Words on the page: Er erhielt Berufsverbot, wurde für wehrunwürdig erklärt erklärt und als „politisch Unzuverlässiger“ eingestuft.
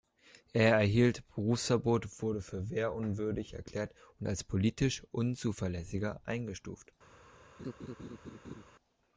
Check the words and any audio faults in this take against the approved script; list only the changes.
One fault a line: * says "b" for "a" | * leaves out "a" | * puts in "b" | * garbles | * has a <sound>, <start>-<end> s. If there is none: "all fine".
* leaves out "erklärt"
* has a laugh, 7.6-8.6 s